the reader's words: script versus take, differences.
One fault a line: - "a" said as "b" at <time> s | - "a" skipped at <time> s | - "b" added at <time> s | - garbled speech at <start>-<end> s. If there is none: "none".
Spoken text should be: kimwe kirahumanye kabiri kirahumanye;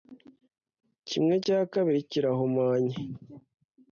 - "kirahumanye" said as "cya" at 1.4 s